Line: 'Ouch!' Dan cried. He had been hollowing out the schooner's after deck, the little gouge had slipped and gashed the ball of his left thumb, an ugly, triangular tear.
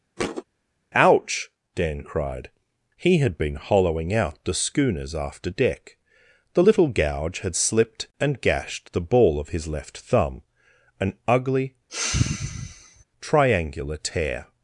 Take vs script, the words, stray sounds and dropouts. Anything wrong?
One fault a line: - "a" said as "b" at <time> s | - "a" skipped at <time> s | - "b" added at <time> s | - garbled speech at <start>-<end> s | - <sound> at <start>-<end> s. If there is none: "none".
- thud at 0.2-0.4 s
- sigh at 11.9-13.0 s